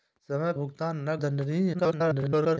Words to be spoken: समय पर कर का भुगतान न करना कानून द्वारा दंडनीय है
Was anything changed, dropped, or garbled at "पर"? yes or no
yes